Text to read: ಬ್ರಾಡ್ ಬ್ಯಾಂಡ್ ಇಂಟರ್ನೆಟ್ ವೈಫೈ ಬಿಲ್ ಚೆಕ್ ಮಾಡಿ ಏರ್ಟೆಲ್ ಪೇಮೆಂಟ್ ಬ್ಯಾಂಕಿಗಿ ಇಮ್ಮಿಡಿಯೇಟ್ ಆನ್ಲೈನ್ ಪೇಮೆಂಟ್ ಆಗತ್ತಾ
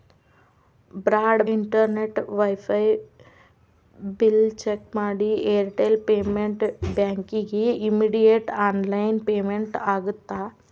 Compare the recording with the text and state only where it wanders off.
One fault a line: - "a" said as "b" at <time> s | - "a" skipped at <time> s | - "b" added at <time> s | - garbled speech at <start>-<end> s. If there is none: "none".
- "ಬ್ಯಾಂಡ್" skipped at 1.4 s